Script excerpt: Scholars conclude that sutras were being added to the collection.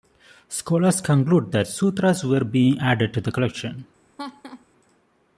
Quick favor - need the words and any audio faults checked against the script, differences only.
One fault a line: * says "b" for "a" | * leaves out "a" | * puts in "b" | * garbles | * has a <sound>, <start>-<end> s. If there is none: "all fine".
* has a laugh, 4.2-4.7 s